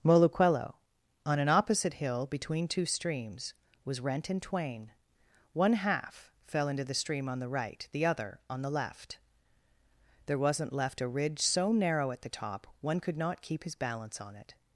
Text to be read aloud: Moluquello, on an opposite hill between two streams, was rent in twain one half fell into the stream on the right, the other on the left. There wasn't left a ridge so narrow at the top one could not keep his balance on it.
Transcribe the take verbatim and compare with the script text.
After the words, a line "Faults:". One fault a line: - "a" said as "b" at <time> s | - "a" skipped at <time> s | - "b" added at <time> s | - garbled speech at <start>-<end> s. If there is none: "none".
Moluquello, on an opposite hill between two streams, was rent in twain one half fell into the stream on the right, the other on the left. There wasn't left a ridge so narrow at the top one could not keep his balance on it.
Faults:
none